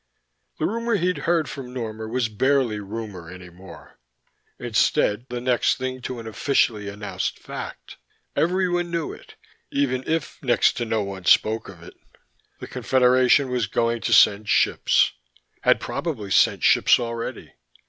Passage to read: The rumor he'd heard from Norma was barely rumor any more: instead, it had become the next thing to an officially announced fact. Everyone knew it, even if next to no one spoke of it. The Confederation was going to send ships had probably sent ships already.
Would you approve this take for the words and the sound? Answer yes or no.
no